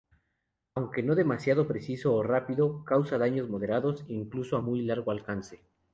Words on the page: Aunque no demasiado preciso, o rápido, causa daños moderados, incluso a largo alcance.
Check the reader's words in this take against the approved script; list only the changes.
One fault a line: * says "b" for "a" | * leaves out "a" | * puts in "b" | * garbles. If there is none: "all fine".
* puts in "muy"